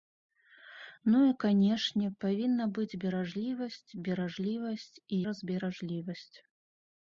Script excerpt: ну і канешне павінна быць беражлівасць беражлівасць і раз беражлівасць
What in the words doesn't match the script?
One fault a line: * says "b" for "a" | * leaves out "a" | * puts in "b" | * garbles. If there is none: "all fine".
all fine